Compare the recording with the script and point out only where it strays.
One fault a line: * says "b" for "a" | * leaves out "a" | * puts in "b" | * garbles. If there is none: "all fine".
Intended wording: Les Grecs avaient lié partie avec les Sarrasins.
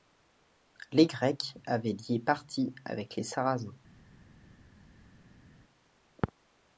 all fine